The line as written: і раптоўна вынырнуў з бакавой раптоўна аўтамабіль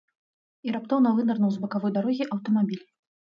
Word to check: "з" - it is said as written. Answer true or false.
true